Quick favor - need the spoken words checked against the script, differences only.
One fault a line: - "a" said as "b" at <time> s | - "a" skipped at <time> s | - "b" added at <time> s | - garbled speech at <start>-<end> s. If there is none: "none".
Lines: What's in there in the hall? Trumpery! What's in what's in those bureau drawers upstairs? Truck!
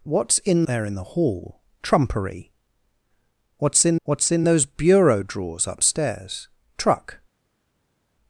none